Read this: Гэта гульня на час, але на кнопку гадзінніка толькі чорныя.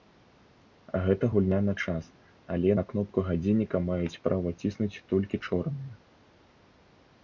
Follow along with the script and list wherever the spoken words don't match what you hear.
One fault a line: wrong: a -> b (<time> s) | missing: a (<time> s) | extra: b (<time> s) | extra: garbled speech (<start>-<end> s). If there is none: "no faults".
extra: маюць права ціснуць (3.9 s)